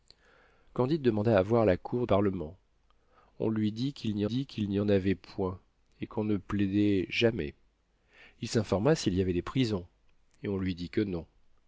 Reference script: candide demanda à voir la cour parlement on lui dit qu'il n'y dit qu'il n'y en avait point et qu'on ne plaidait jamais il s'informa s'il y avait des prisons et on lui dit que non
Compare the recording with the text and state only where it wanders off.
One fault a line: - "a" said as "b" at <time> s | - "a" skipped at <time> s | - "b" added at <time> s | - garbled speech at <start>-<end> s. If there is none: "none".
none